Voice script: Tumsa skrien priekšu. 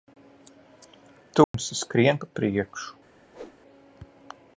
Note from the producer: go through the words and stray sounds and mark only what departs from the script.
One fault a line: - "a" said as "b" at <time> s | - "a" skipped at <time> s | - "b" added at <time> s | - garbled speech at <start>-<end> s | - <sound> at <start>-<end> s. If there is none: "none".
- dropout at 1.4-1.5 s
- "pa" added at 2.2 s
- whoosh at 3.3-3.6 s